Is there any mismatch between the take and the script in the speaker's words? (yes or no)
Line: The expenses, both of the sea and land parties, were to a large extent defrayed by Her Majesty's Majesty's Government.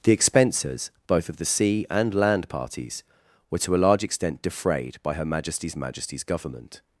no